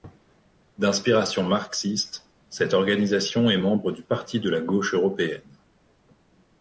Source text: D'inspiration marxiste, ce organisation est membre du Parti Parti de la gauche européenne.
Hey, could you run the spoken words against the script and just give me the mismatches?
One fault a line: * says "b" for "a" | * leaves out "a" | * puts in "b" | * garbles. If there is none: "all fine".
* says "cette" for "ce"
* leaves out "Parti"